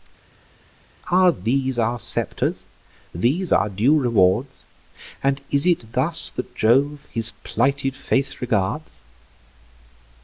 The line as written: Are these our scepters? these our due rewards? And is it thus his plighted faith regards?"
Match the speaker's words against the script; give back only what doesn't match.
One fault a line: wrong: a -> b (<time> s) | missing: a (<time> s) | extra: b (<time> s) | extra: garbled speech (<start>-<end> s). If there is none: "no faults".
extra: that Jove (6.3 s)